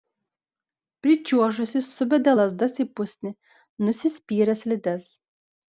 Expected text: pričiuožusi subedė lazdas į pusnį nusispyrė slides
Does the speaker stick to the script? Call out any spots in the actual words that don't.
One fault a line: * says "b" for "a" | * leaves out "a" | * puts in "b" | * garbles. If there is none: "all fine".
all fine